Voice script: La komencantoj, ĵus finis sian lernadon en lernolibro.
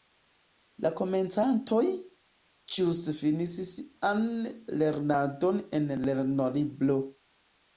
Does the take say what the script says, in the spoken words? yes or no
yes